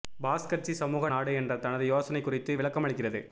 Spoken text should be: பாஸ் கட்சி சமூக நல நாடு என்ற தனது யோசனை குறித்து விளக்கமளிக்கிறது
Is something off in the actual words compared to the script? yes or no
yes